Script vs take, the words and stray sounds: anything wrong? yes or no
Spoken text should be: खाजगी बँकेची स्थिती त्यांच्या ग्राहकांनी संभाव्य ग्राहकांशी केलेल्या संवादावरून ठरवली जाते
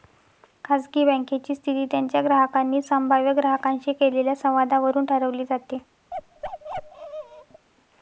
yes